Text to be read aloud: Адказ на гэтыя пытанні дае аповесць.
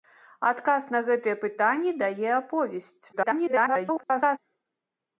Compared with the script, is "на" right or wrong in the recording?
right